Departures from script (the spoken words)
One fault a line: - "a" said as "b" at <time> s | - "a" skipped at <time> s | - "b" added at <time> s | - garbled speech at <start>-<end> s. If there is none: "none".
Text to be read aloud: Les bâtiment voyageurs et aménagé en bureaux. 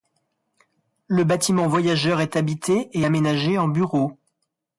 - "Les" said as "Le" at 1.1 s
- "est habité" added at 2.2 s